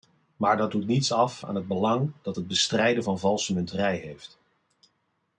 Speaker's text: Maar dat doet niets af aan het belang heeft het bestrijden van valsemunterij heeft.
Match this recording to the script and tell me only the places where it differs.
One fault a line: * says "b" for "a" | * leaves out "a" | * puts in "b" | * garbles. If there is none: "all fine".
* says "dat" for "heeft"